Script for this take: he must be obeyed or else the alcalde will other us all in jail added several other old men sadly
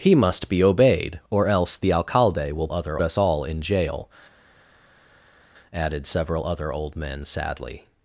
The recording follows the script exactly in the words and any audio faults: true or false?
true